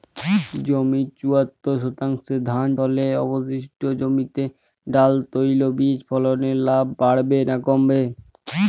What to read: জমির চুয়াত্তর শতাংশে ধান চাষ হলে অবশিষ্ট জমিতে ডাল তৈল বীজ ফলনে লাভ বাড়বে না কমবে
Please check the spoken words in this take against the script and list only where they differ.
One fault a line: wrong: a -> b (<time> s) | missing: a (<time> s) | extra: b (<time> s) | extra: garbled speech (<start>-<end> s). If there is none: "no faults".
missing: চাষ (2.7 s)